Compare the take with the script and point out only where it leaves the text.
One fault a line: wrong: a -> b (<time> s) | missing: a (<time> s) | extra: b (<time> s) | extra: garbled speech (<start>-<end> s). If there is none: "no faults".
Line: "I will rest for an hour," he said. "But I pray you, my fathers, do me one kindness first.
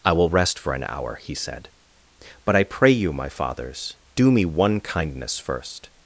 no faults